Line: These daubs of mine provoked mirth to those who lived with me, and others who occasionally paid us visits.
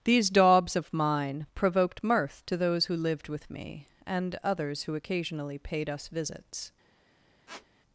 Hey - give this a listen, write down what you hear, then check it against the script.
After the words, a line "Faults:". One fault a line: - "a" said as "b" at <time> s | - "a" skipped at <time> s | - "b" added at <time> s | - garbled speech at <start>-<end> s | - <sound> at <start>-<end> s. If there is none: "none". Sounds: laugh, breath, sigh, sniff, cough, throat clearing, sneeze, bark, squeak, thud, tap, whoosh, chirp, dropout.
These daubs of mine provoked mirth to those who lived with me, and others who occasionally paid us visits.
Faults:
- squeak at 7.5-7.7 s